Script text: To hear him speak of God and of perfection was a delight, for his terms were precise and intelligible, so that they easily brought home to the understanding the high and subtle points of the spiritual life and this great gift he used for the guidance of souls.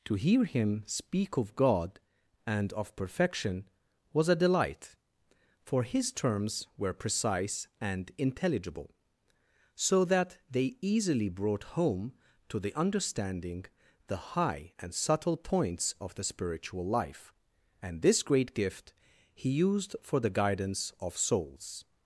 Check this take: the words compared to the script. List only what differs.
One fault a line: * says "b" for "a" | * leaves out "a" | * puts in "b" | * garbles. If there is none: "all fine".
all fine